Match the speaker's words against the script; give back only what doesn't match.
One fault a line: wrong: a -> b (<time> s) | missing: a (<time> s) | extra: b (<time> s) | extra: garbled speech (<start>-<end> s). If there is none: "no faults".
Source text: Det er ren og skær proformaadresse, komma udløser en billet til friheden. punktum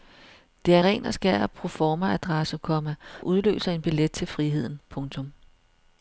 no faults